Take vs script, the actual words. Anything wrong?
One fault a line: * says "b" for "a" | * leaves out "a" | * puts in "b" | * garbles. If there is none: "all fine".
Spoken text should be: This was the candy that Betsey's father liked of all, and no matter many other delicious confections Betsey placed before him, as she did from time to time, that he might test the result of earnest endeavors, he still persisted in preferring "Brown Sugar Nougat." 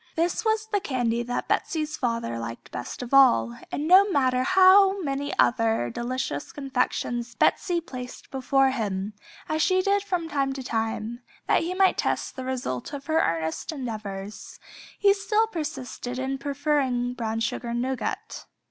* puts in "best"
* puts in "how"
* puts in "her"